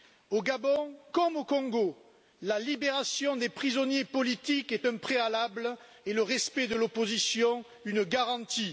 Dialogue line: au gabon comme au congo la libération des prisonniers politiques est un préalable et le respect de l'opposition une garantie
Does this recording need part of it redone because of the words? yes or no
no